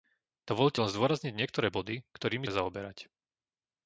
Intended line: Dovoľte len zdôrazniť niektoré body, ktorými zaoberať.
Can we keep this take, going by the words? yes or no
yes